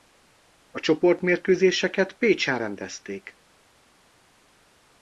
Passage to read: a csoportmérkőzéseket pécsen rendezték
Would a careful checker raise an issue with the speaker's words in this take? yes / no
no